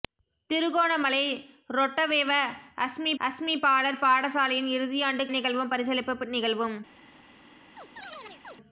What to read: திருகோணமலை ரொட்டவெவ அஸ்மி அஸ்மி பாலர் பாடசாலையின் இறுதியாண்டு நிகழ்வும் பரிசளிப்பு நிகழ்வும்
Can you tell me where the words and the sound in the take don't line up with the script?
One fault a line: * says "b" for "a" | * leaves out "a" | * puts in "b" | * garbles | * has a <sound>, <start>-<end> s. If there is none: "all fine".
* has a chirp, 7.8-8.6 s